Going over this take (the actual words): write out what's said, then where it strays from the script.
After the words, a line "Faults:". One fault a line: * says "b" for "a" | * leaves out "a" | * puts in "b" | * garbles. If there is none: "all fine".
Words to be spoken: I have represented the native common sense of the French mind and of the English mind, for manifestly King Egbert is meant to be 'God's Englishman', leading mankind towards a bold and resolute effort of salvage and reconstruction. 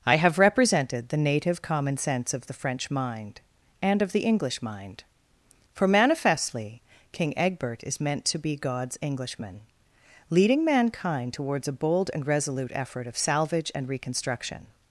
I have represented the native common sense of the French mind and of the English mind, for manifestly King Egbert is meant to be 'God's Englishman', leading mankind towards a bold and resolute effort of salvage and reconstruction.
Faults:
all fine